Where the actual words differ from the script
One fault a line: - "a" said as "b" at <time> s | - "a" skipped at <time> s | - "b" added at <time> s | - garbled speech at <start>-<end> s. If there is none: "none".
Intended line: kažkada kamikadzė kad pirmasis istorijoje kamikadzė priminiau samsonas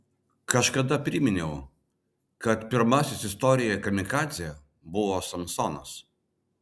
- "kamikadzė" said as "priminiau" at 1.1 s
- "priminiau" said as "buvo" at 5.0 s